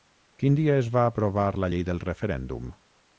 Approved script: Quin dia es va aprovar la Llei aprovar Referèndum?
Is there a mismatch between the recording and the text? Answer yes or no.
yes